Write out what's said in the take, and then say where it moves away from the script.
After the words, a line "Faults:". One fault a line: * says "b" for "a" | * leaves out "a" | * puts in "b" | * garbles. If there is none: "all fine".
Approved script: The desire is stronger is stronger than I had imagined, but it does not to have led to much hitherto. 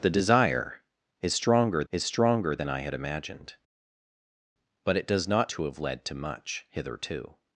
The desire is stronger is stronger than I had imagined, but it does not to have led to much hitherto.
Faults:
all fine